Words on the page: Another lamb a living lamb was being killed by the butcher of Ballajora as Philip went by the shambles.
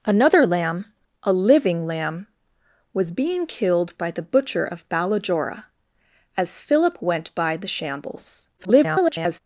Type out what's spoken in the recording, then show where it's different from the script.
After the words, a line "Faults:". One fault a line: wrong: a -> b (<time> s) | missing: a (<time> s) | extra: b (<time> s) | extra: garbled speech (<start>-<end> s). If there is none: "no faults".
Another lamb a living lamb was being killed by the butcher of Ballajora as Philip went by the shambles. [garbled]
Faults:
extra: garbled speech (8.6-9.4 s)